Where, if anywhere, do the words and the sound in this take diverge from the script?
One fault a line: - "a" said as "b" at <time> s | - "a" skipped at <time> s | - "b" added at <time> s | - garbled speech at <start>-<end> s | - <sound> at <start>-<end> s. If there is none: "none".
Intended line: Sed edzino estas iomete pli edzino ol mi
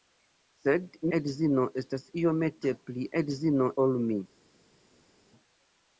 none